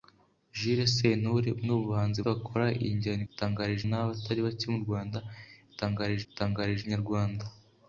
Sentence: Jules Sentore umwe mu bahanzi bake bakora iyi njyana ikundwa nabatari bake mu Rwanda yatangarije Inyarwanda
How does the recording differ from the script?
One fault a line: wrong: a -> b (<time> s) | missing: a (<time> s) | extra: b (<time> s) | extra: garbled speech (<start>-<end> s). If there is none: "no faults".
missing: bake (2.2 s)
wrong: ikundwa -> yatangarije (3.3 s)
extra: yatangarije (6.3 s)